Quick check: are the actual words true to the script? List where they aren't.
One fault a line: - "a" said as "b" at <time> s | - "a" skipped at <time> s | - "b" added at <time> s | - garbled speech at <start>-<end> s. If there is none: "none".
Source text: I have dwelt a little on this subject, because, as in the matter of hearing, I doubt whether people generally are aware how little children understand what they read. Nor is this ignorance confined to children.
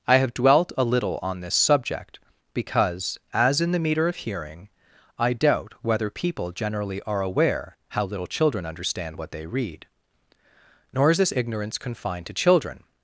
- "matter" said as "meter" at 3.8 s